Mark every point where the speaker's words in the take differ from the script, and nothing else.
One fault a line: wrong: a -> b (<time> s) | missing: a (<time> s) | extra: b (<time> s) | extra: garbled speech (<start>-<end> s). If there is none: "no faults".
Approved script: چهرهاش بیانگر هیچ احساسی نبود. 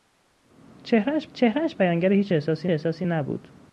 extra: چهرهاش (1.3 s)
extra: احساسی (2.7 s)